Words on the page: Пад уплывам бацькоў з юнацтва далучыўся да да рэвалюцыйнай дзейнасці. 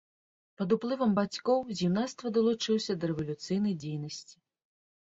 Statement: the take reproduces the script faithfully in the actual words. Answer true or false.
false